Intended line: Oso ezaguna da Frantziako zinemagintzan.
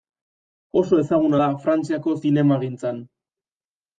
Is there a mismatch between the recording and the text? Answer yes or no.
no